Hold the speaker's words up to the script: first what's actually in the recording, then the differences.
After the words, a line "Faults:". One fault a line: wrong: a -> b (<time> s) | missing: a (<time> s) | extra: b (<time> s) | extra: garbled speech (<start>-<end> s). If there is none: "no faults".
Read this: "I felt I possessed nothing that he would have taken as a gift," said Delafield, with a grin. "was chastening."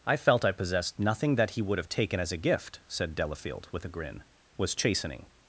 "I felt I possessed nothing that he would have taken as a gift," said Delafield, with a grin. "was chastening."
Faults:
no faults